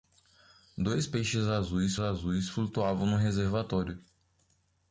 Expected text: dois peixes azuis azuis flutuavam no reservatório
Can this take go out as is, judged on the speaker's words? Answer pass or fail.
pass